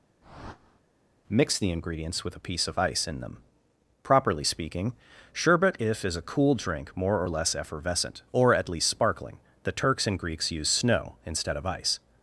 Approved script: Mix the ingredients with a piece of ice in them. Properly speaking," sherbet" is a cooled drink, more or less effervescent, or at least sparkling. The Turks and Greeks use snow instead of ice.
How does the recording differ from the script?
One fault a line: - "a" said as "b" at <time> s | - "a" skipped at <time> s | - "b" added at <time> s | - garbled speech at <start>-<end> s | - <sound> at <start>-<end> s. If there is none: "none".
- whoosh at 0.2-0.8 s
- "if" added at 5.8 s
- "cooled" said as "cool" at 6.2 s